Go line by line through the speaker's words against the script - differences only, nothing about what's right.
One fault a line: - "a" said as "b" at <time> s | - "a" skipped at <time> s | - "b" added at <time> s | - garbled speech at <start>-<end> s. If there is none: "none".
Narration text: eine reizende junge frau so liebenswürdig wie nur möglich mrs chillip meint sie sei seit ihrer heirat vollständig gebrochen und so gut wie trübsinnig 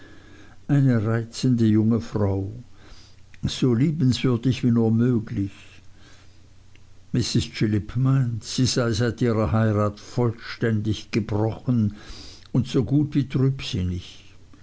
none